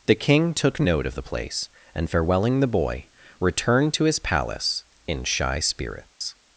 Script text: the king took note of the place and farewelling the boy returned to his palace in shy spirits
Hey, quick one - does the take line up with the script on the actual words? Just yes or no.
yes